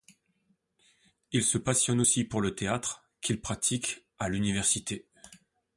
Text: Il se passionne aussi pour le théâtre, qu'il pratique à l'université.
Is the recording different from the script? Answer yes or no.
no